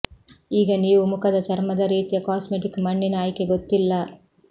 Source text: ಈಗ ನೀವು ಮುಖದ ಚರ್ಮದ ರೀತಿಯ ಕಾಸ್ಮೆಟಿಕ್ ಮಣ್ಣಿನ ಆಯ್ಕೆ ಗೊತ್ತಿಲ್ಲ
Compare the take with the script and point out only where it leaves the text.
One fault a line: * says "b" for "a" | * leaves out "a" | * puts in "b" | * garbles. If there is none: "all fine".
all fine